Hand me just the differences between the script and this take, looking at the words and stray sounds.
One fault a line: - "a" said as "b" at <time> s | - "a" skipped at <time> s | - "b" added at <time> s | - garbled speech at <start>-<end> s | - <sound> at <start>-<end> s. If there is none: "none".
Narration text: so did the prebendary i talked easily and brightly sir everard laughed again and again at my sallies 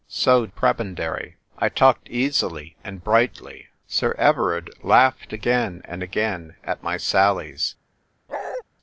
- "did the" skipped at 0.5 s
- bark at 8.3-8.6 s